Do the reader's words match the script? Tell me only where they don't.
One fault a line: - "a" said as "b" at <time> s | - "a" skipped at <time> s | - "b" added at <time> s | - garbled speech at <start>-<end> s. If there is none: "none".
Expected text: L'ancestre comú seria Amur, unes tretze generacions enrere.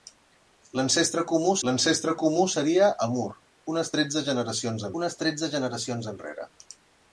- "l'ancestre comú" added at 1.7 s
- "unes tretze generacions" added at 5.0 s